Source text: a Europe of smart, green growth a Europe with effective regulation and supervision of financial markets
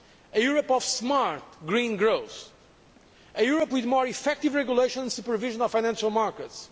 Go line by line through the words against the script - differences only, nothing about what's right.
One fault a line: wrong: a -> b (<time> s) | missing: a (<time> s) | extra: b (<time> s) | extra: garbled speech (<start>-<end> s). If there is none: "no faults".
extra: more (3.8 s)